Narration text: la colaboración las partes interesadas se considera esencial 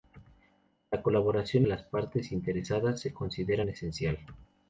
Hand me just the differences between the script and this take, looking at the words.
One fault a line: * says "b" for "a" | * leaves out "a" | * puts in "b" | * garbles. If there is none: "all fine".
all fine